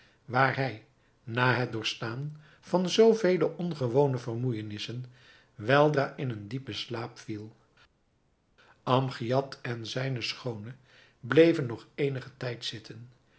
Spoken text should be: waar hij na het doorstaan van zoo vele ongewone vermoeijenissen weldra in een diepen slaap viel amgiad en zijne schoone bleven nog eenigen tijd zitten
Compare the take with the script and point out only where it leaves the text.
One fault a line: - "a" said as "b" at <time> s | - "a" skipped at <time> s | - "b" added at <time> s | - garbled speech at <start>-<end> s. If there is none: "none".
none